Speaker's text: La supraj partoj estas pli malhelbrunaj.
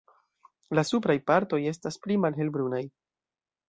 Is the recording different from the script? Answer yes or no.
no